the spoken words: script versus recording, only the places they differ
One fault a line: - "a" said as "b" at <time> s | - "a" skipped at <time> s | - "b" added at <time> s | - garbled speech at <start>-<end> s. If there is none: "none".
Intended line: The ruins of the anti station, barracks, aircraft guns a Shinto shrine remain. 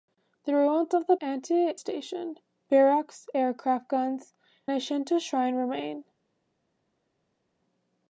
none